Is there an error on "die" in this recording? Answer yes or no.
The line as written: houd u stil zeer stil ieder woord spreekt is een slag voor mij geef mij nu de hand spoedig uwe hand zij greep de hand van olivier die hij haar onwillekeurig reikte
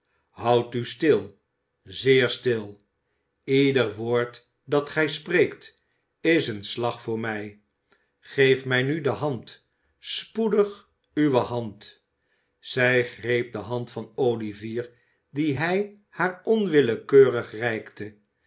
no